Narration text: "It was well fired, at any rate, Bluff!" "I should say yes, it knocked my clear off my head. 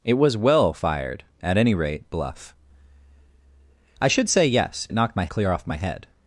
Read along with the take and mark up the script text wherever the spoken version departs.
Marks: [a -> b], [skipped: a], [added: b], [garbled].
"It was well fired, at any rate, Bluff!" "I should say yes, it knocked my clear off my head.